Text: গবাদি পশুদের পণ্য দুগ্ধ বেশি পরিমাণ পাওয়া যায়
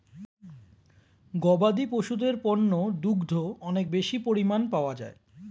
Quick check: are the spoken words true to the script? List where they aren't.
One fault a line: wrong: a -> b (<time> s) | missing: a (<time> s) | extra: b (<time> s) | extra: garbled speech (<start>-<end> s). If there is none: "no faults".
extra: অনেক (3.6 s)